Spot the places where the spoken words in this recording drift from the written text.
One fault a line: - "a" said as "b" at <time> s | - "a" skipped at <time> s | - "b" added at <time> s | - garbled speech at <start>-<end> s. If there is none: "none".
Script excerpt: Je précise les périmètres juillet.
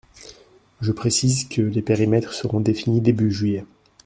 - "que" added at 1.5 s
- "seront définis début" added at 2.3 s